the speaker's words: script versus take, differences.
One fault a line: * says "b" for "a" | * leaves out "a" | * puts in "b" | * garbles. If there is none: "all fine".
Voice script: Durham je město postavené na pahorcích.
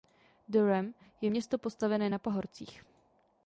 all fine